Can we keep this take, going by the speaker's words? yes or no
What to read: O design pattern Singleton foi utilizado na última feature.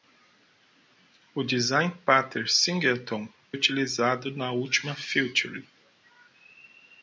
no